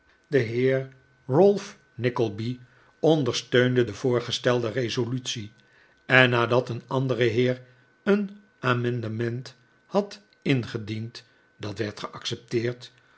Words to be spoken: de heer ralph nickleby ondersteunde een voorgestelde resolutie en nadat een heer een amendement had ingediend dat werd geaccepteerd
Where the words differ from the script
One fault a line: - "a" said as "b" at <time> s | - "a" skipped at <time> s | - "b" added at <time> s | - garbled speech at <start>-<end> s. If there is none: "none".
- "een" said as "de" at 3.8 s
- "andere" added at 6.9 s